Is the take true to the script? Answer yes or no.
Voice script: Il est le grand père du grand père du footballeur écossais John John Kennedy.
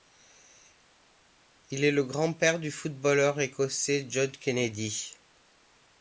no